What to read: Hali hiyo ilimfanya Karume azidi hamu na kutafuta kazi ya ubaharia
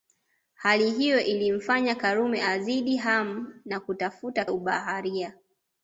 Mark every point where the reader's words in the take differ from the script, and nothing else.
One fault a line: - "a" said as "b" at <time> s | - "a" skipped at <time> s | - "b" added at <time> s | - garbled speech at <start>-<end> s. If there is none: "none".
- "kazi" skipped at 4.5 s